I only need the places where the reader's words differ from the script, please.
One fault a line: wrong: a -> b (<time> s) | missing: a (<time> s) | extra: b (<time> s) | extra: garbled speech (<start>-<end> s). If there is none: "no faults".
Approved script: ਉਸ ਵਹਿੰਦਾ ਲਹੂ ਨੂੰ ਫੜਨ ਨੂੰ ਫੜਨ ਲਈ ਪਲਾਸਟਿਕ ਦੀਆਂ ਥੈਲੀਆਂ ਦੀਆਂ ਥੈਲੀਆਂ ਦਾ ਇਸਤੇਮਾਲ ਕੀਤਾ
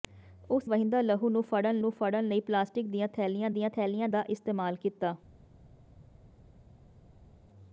no faults